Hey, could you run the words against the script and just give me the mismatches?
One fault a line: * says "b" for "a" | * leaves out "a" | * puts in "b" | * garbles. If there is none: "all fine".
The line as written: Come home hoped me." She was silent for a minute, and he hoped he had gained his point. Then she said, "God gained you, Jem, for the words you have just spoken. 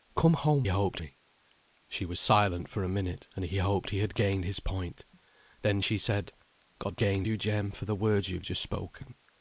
all fine